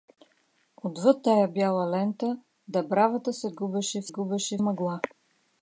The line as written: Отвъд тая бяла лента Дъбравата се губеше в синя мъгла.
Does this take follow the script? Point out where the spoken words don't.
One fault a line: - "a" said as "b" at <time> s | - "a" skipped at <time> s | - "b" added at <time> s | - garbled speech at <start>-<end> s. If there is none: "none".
- "синя" said as "губеше" at 4.1 s